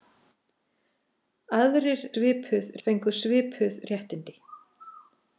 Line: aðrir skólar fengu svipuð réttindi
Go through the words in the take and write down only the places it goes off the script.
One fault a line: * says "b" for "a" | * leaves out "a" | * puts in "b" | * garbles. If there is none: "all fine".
* says "svipuð" for "skólar"